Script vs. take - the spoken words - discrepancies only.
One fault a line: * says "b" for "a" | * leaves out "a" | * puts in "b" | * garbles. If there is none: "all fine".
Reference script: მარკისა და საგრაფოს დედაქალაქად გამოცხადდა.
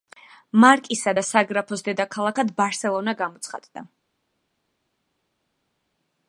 * puts in "ბარსელონა"